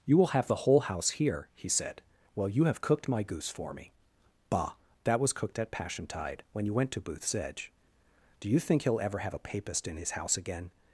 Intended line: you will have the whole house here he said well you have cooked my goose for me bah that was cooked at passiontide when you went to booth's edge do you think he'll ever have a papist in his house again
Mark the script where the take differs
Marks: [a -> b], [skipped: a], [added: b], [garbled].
you will have the whole house here he said well you have cooked my goose for me bah that was cooked at passiontide when you went to booth's edge do you think he'll ever have a papist in his house again